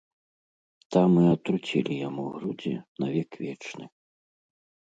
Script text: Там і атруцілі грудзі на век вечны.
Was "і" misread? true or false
false